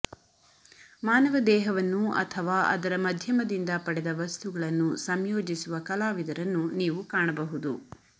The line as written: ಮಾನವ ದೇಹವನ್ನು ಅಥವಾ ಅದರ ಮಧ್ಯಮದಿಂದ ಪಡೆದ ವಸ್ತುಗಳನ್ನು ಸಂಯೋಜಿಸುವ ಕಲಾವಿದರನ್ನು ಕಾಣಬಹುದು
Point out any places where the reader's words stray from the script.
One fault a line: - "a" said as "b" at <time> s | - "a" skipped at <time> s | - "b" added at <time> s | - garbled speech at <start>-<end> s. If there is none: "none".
- "ನೀವು" added at 6.8 s